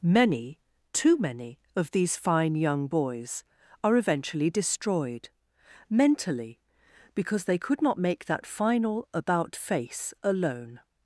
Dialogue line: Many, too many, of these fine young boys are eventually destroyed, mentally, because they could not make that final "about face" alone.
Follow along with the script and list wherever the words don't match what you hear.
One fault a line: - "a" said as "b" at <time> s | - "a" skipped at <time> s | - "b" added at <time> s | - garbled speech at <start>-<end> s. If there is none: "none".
none